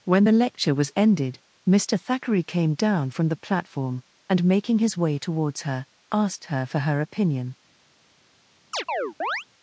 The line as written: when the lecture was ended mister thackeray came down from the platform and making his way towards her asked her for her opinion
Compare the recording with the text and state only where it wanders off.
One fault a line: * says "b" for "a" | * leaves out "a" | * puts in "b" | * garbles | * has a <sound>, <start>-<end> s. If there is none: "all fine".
* has a chirp, 8.7-9.5 s